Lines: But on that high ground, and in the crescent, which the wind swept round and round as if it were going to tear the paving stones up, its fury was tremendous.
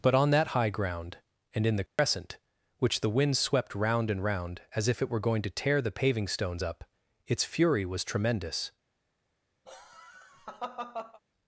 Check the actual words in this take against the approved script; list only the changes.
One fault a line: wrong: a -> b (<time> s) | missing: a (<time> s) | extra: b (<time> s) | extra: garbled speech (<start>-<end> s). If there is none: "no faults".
no faults